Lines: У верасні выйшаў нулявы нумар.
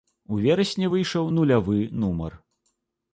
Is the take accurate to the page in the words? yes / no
yes